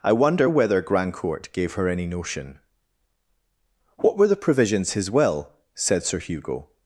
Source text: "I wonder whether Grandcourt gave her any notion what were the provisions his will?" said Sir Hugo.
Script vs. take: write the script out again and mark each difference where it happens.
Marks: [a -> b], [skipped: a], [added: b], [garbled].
"I wonder whether Grandcourt gave her any notion what were the provisions his will?" said Sir Hugo.